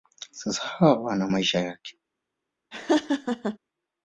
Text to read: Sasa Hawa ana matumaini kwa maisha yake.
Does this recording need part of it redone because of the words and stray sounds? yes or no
yes